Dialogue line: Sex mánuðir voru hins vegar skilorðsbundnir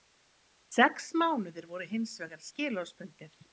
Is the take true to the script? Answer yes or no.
yes